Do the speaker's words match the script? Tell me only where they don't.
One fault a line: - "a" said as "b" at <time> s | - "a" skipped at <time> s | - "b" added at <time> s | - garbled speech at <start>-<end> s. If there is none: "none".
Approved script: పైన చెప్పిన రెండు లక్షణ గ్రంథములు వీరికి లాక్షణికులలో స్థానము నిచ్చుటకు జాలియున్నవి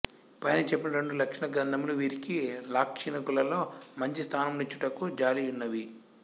- "మంచి" added at 4.0 s